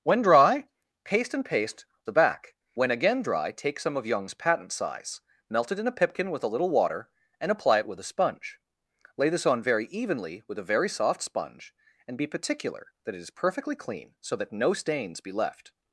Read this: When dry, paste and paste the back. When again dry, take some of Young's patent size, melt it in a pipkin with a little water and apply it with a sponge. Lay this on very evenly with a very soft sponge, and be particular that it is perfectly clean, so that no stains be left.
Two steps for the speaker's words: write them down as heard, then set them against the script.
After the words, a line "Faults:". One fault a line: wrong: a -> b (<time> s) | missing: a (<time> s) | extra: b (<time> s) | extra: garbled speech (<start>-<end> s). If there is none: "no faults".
When dry, paste and paste the back. When again dry, take some of Young's patent size, melt it in a pipkin with a little water and apply it with a sponge. Lay this on very evenly with a very soft sponge, and be particular that it is perfectly clean, so that no stains be left.
Faults:
no faults